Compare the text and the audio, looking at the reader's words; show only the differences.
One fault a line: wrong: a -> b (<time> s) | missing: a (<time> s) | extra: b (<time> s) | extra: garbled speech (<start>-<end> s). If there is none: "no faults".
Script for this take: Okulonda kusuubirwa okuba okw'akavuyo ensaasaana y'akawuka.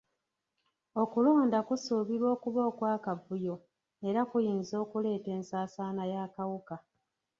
extra: era kuyinza okuleeta (4.1 s)